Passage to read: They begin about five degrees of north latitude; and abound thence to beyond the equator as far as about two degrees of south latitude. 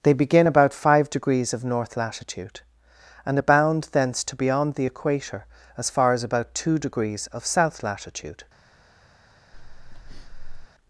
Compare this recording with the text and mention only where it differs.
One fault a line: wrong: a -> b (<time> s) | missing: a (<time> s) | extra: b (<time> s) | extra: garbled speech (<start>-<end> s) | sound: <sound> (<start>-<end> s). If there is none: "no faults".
sound: breath (9.5-10.7 s)